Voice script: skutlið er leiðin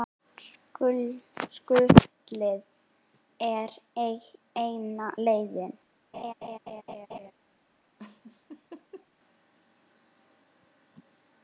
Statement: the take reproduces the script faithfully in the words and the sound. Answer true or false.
false